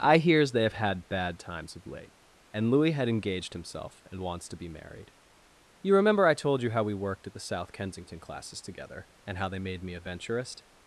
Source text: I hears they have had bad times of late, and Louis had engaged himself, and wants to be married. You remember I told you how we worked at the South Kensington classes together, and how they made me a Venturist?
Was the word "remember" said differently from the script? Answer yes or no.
no